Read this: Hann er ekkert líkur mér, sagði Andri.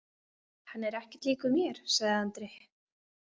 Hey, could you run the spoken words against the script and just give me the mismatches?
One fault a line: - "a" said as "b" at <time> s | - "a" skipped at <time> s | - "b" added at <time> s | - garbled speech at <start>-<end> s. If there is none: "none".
none